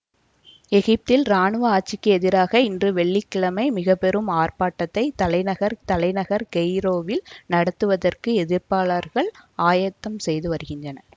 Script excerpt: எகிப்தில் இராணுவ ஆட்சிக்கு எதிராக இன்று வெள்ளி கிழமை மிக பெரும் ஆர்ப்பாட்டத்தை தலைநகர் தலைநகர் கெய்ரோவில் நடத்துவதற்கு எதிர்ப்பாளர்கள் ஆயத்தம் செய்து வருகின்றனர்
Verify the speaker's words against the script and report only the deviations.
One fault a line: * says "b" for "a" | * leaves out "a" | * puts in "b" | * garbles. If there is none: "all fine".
all fine